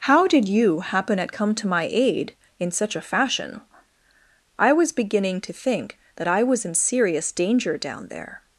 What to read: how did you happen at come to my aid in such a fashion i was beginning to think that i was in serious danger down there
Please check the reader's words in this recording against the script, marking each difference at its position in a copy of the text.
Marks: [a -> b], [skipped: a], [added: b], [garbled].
how did you happen at come to my aid in such a fashion i was beginning to think that i was in serious danger down there